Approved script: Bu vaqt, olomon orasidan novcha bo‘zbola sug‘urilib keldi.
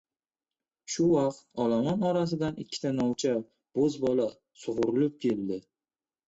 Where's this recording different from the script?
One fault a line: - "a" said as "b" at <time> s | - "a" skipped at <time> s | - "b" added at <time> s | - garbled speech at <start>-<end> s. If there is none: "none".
- "Bu" said as "Shu" at 0.9 s
- "ikkita" added at 2.6 s